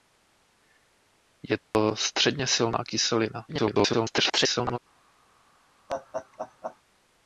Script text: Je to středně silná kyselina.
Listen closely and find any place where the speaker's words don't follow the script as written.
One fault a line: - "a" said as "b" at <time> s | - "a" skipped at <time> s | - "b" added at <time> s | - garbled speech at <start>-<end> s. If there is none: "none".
- garbled speech at 3.5-4.8 s